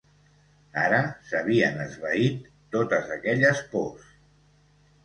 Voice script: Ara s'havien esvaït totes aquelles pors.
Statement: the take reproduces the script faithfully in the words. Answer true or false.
true